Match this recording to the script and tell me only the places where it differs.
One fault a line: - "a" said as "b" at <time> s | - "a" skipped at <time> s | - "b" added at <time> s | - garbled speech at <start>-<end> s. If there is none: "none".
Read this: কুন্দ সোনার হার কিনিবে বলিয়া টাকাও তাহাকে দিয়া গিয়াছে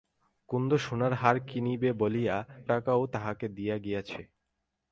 none